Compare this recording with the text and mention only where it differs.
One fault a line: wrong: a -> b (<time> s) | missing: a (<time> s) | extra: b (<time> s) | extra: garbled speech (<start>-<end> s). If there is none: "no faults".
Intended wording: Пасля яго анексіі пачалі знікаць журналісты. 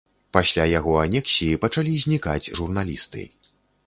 no faults